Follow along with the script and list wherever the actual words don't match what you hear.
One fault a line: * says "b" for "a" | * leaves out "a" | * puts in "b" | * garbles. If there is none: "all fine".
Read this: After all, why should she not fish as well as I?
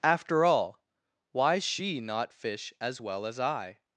* leaves out "should"